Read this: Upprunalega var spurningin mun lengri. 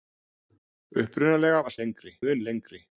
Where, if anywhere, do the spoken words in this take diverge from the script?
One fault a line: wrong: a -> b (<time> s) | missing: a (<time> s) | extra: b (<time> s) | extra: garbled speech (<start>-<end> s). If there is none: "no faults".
wrong: spurningin -> lengri (1.8 s)